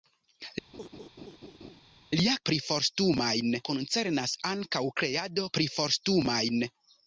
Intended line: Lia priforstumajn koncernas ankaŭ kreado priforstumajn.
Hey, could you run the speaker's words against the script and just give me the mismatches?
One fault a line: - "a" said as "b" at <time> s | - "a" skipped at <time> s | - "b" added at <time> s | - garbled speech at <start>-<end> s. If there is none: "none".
none